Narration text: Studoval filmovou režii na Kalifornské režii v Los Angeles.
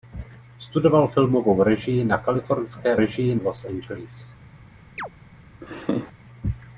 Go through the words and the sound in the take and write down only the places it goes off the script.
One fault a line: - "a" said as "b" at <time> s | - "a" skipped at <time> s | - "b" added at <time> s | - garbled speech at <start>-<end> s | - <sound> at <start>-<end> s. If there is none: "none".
- chirp at 5.0-5.1 s
- laugh at 5.6-6.1 s